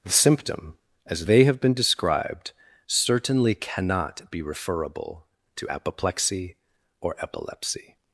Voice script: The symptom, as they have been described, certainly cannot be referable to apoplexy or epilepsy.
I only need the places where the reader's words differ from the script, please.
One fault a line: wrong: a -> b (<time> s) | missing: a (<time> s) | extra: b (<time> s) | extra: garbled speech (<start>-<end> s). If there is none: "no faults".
no faults